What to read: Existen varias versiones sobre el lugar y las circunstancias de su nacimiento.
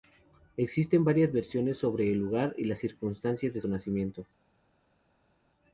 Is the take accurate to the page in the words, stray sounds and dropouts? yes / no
no